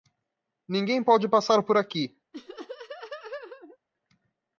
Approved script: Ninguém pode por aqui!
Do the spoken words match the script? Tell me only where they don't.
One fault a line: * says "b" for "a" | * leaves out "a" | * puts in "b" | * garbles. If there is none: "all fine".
* puts in "passar"